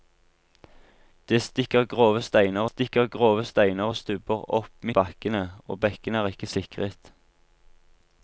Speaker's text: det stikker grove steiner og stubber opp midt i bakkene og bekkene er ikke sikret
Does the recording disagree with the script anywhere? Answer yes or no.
yes